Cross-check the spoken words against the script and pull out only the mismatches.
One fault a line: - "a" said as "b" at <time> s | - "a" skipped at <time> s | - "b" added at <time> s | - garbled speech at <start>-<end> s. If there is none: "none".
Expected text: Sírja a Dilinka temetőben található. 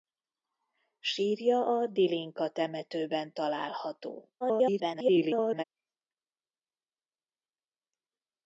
- garbled speech at 4.4-5.6 s